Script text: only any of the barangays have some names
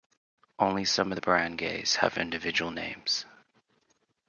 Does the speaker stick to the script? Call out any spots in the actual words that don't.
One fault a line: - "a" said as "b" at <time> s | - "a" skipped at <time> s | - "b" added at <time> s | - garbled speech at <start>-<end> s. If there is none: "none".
- "any" said as "some" at 0.8 s
- "some" said as "individual" at 2.2 s